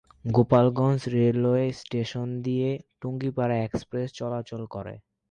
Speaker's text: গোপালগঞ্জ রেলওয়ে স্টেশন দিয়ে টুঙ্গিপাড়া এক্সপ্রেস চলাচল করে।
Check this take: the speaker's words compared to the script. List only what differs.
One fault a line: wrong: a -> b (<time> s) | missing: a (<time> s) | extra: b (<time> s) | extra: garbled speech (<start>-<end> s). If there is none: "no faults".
no faults